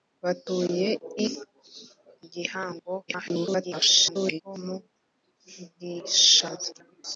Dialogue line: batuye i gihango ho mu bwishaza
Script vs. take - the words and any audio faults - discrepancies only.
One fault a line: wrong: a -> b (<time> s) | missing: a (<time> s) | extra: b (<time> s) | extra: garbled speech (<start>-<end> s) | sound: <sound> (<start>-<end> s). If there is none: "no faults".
extra: garbled speech (3.1-4.4 s)